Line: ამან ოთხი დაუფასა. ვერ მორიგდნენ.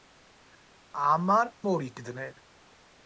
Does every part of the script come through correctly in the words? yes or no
no